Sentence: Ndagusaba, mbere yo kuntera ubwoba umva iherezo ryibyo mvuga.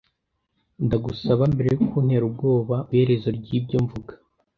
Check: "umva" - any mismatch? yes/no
yes